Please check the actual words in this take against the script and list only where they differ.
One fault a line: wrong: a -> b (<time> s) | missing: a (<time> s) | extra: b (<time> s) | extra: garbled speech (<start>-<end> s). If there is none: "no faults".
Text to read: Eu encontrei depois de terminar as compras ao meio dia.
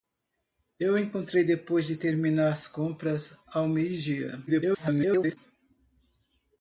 extra: garbled speech (4.5-5.4 s)